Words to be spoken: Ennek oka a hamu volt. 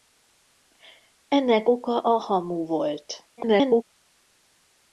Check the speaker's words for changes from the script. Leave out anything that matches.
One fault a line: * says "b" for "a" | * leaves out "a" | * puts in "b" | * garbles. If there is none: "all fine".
* garbles